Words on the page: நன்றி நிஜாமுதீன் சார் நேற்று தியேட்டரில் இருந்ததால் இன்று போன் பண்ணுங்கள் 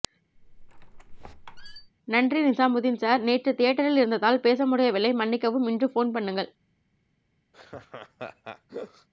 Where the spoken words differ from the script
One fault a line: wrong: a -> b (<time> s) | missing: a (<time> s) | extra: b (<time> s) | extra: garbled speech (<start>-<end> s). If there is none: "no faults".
extra: பேச முடியவில்லை மன்னிக்கவும் (4.4 s)